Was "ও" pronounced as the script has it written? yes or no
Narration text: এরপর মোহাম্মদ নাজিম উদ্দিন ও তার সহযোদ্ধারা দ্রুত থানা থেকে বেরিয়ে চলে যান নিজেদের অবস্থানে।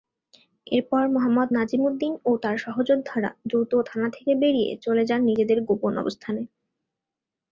yes